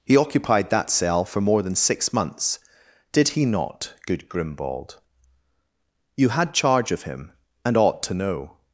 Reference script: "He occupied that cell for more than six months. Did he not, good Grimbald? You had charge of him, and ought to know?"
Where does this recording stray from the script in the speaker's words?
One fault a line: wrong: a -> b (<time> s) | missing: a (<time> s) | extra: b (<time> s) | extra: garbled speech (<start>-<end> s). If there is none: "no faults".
no faults